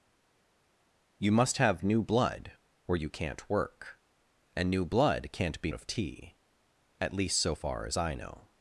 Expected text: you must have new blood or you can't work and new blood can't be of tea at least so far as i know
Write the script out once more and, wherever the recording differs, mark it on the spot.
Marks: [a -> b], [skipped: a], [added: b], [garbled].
you must have new blood or you can't work and new blood can't be of tea at least so far as i know